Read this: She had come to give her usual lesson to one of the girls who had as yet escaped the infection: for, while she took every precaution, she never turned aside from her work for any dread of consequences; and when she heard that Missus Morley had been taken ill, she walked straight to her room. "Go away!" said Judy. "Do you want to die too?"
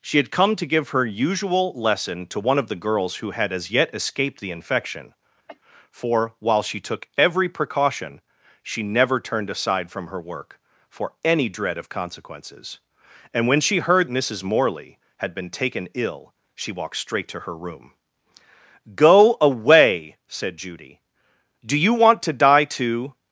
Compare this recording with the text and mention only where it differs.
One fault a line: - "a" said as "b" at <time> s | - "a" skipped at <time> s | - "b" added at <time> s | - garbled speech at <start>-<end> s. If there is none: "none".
- "that" skipped at 14.1 s